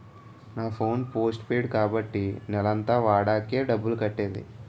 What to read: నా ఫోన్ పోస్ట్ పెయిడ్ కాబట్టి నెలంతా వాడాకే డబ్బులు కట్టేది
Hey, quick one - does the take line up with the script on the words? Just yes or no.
yes